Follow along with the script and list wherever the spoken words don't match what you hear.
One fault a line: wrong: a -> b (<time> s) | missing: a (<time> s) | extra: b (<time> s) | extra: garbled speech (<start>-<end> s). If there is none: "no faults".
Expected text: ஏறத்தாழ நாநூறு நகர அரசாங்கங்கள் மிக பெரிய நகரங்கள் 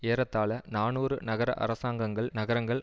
missing: மிக பெரிய (2.3 s)